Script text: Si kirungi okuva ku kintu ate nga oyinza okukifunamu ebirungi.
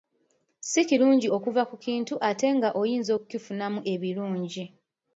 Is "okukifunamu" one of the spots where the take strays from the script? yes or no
no